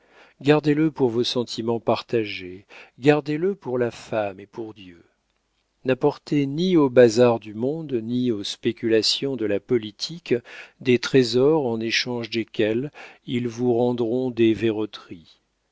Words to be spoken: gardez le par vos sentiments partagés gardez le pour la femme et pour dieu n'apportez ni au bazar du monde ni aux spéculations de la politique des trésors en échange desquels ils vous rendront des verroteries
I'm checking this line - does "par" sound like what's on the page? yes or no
no